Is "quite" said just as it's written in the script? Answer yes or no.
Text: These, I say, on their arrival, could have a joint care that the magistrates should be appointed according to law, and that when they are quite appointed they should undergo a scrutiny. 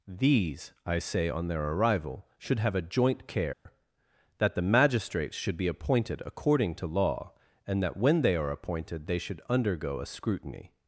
no